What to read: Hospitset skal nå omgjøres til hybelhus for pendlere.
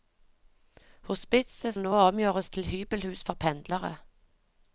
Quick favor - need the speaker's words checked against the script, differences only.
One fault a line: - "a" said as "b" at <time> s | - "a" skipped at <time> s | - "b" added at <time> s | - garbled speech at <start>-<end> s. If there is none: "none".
- "skal" skipped at 1.8 s